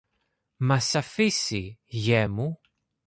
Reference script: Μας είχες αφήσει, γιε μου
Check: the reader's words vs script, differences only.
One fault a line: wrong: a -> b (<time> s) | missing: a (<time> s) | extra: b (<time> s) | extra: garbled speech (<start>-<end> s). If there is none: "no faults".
missing: είχες (0.9 s)